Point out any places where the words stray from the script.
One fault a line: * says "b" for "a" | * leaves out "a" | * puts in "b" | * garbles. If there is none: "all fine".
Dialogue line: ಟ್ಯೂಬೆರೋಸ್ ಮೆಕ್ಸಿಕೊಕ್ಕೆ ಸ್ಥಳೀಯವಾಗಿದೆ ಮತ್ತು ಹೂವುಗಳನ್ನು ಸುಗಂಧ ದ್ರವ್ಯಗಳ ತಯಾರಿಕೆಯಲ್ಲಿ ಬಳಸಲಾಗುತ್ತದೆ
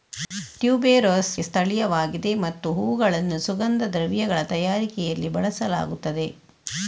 * leaves out "ಮೆಕ್ಸಿಕೊಕ್ಕೆ"